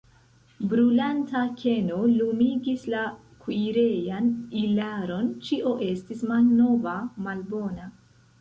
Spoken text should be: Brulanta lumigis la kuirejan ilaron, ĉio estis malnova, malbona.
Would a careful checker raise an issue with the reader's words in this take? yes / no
yes